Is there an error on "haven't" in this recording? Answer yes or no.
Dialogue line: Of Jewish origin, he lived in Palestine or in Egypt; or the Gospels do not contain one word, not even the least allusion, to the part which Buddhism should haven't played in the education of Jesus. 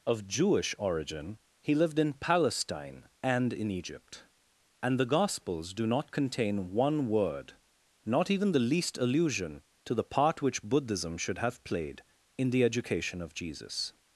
yes